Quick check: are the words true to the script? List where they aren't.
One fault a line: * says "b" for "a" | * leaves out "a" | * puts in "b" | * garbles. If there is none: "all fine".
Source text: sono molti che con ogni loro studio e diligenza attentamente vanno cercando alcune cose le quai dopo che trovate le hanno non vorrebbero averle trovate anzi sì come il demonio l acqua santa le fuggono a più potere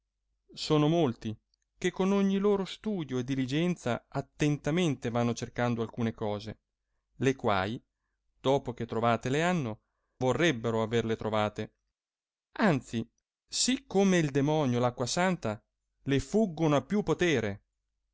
* leaves out "non"